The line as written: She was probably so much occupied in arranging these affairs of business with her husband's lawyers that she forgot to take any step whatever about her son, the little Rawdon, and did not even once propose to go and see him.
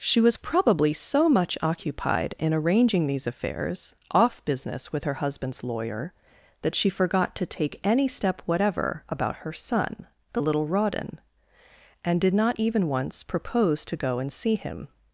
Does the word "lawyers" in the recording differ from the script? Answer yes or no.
yes